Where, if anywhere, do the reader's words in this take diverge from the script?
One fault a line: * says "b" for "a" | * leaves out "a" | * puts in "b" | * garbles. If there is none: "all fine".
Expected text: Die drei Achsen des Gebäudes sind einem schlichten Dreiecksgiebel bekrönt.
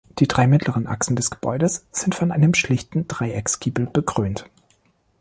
* puts in "mittleren"
* puts in "von"